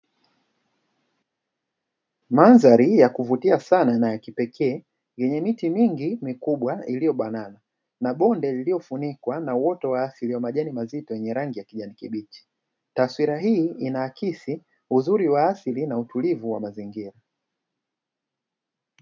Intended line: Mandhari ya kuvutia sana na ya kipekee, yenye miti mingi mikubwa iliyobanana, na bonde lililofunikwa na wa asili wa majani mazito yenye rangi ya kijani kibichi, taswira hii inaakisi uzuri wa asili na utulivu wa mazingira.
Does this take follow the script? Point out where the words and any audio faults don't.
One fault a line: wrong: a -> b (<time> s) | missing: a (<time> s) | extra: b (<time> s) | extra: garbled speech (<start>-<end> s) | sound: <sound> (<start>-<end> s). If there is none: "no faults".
extra: uoto (9.6 s)